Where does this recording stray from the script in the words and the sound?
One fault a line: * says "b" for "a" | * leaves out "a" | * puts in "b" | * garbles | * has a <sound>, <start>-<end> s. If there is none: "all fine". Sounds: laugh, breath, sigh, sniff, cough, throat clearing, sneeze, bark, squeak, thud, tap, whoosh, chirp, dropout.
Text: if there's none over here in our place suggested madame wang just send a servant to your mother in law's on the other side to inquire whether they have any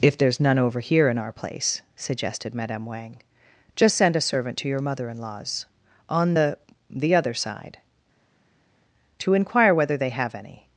* puts in "the"